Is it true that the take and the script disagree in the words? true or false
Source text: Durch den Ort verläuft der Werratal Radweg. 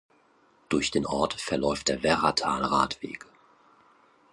false